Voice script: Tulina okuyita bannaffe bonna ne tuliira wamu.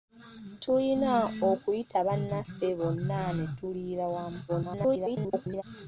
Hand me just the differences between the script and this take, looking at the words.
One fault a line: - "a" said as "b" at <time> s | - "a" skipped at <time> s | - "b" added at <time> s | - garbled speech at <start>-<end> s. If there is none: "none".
- garbled speech at 4.5-5.6 s